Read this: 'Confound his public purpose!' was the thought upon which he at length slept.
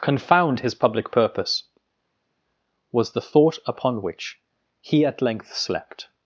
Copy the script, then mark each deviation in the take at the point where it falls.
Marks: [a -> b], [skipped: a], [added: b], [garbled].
'Confound his public purpose!' was the thought upon which he at length slept.